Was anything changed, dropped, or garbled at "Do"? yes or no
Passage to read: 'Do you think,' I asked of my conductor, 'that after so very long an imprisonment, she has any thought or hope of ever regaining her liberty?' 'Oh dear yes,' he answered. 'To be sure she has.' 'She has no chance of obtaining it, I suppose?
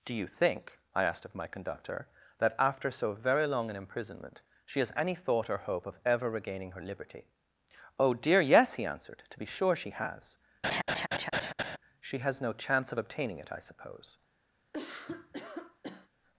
no